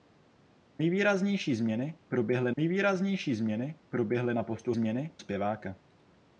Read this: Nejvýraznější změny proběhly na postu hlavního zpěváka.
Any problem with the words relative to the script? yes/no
yes